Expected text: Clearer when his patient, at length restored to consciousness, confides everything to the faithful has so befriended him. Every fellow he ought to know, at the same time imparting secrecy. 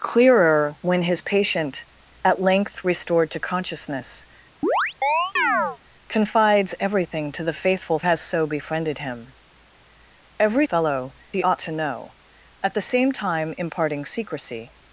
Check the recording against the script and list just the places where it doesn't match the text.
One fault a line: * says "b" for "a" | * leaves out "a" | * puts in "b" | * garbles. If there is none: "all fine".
all fine